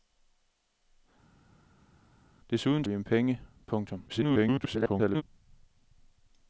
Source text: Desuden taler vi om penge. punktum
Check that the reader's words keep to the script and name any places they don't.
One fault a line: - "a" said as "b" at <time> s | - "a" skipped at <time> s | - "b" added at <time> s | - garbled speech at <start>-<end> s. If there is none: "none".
- "taler" skipped at 2.8 s
- garbled speech at 4.1-5.2 s